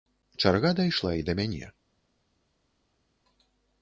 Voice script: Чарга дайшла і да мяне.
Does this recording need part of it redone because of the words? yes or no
no